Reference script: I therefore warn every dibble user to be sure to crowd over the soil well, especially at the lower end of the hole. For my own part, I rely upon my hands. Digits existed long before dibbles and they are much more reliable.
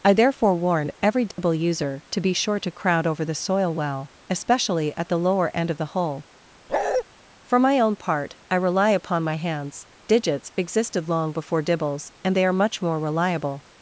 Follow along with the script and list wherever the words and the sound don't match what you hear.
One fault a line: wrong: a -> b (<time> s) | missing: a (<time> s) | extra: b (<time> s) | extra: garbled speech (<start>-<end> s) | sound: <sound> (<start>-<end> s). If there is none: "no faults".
sound: dropout (1.3-1.4 s)
sound: bark (6.7-7.0 s)